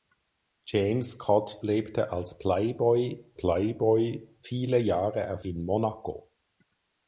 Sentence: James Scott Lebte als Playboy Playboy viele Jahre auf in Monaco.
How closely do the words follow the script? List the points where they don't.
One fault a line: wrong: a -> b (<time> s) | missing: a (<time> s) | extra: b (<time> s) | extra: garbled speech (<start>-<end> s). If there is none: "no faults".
no faults